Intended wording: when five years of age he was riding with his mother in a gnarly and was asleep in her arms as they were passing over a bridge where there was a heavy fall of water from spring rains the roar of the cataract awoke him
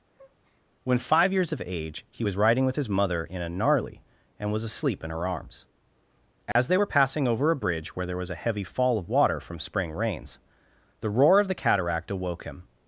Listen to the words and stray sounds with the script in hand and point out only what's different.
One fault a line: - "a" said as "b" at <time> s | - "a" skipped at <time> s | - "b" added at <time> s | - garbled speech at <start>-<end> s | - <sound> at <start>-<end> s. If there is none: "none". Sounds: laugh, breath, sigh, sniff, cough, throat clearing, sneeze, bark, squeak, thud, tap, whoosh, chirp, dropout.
- breath at 0.1-0.7 s
- dropout at 6.5-6.6 s